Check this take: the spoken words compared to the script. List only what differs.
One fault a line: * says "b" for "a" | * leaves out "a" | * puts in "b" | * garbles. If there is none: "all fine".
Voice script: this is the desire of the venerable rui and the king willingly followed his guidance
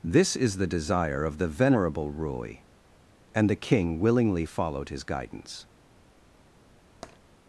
all fine